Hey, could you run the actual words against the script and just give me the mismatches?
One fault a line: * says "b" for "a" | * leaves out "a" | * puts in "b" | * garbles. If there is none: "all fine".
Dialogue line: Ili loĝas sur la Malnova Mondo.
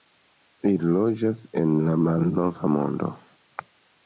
* says "en" for "sur"